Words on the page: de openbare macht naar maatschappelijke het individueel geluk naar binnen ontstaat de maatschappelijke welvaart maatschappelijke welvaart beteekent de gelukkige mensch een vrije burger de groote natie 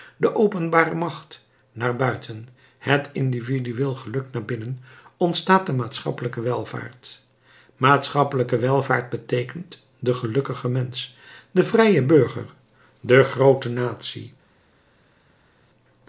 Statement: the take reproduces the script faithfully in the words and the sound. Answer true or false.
false